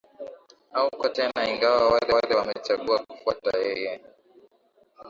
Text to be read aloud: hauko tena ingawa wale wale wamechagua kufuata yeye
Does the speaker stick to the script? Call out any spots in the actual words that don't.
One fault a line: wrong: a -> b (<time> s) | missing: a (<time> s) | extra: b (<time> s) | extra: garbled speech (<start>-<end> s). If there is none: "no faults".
no faults